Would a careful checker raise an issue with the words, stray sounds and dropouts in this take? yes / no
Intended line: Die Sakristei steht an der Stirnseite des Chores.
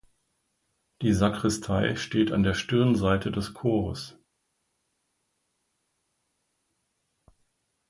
no